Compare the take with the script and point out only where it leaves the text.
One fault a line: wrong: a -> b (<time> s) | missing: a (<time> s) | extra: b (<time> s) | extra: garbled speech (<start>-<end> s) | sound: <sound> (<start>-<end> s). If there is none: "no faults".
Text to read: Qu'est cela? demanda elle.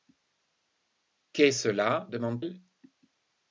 no faults